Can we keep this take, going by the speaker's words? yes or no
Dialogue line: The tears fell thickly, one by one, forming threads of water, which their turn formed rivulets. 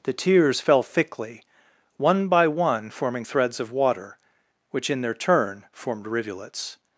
no